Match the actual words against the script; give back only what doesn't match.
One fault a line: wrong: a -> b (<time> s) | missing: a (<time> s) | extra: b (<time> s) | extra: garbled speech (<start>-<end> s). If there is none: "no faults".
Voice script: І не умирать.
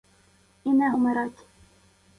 no faults